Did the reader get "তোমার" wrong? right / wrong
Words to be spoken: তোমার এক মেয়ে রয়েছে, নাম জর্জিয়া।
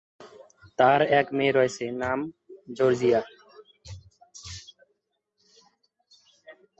wrong